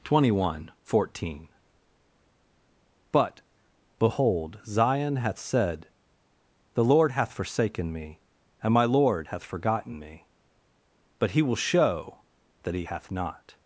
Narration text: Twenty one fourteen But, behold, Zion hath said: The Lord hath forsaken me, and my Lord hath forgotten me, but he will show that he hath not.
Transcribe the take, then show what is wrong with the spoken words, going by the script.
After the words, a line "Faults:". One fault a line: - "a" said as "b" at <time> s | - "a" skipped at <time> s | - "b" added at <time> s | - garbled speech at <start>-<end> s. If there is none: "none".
Twenty one fourteen But, behold, Zion hath said: The Lord hath forsaken me, and my Lord hath forgotten me, but he will show that he hath not.
Faults:
none